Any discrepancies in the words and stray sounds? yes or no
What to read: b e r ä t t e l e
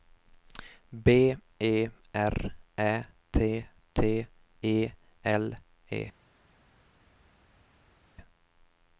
no